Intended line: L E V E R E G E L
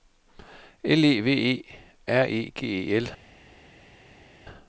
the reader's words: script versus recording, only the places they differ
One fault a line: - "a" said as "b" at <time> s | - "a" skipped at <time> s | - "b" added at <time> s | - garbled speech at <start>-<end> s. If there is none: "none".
none